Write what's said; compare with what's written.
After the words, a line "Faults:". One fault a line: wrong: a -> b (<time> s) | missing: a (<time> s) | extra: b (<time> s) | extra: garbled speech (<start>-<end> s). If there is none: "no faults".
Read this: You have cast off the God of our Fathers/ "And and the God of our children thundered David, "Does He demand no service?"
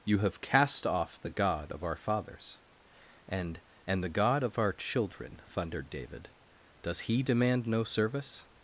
You have cast off the God of our Fathers/ "And and the God of our children thundered David, "Does He demand no service?"
Faults:
no faults